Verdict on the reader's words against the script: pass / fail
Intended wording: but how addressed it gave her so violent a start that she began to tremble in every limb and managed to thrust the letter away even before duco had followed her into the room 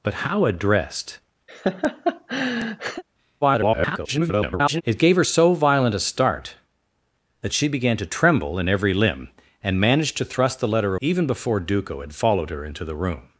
fail